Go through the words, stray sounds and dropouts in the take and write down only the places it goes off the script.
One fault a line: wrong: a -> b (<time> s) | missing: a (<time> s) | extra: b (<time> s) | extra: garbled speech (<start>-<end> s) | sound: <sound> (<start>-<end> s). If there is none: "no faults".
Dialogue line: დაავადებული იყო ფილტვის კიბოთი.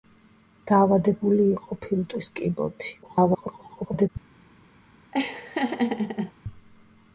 extra: garbled speech (3.0-4.1 s)
sound: laugh (5.1-6.3 s)